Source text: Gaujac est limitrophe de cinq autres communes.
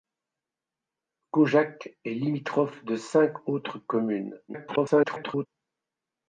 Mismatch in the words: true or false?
true